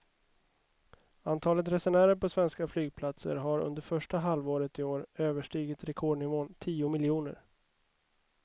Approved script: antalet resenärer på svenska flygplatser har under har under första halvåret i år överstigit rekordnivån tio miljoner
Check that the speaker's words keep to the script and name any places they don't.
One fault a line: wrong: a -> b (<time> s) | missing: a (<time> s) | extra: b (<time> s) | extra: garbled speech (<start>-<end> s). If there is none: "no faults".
missing: har under (3.8 s)